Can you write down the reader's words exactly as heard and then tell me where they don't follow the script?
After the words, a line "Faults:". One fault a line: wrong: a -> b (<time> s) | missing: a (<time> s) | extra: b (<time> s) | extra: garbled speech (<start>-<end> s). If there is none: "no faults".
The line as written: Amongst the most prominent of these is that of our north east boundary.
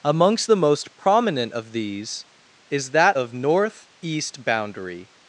Amongst the most prominent of these is that of north east boundary.
Faults:
missing: our (3.3 s)